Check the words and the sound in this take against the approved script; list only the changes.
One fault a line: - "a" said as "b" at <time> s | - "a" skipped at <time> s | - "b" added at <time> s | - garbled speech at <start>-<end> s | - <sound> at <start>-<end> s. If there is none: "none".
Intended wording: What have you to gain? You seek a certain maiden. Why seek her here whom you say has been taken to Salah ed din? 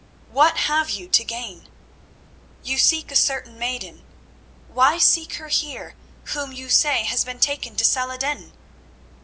none